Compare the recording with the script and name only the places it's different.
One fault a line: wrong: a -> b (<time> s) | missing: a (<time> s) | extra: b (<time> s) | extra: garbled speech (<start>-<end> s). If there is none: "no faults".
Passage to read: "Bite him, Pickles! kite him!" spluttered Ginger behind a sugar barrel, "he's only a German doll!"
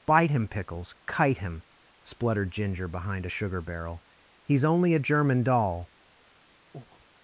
no faults